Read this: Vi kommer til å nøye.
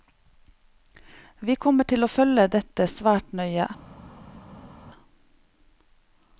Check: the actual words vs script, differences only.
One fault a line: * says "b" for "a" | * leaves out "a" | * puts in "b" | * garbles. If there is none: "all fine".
* puts in "følge dette svært"